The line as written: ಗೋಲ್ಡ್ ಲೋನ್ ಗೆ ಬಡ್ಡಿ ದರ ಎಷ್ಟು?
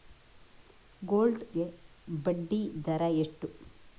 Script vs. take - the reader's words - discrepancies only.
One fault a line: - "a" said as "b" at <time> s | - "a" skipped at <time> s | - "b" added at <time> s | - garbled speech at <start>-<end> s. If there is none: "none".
- "ಲೋನ್" skipped at 1.4 s